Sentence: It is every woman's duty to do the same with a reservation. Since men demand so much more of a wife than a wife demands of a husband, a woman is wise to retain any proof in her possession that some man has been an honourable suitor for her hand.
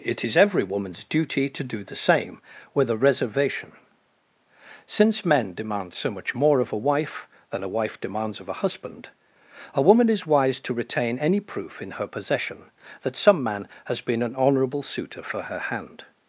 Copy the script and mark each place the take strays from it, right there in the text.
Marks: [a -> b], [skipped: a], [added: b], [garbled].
It is every woman's duty to do the same with a reservation. Since men demand so much more of a wife than a wife demands of a husband, a woman is wise to retain any proof in her possession that some man has been an honourable suitor for her hand.